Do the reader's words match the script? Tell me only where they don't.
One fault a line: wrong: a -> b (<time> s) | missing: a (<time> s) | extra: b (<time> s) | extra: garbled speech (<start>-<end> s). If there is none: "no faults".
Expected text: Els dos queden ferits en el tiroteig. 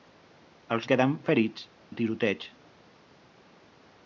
missing: dos (0.9 s)
missing: en (1.7 s)